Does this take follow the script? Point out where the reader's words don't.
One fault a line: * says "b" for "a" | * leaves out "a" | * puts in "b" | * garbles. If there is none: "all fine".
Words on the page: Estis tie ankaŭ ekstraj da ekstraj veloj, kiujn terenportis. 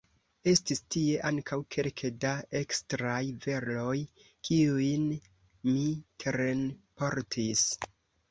* says "kelke" for "ekstraj"
* puts in "mi"